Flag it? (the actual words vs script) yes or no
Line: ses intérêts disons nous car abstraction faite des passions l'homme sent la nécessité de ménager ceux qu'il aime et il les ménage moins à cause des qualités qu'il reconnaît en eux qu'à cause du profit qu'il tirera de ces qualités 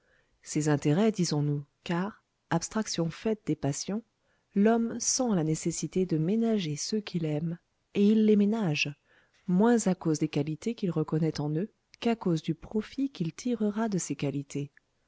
no